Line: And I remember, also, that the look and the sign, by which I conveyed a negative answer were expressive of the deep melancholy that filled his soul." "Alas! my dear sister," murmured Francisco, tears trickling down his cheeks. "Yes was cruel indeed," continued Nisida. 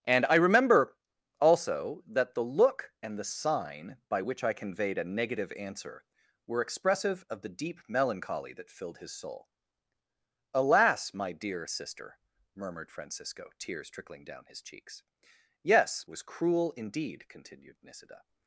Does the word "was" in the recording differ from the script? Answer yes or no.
no